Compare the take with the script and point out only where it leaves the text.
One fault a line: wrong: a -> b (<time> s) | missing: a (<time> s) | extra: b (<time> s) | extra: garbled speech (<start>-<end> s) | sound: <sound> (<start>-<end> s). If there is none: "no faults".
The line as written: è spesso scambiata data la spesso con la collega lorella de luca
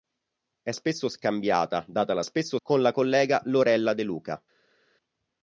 no faults